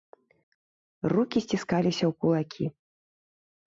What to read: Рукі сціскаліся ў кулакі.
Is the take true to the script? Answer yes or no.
yes